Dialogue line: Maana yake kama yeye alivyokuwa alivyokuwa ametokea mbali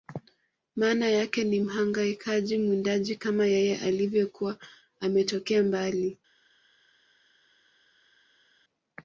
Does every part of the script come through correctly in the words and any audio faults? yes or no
no